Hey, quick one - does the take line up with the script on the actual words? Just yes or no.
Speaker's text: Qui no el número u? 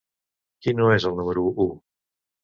no